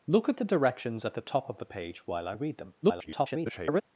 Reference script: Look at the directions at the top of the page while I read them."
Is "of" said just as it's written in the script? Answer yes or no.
yes